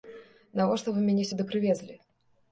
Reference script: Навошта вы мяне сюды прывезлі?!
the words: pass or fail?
pass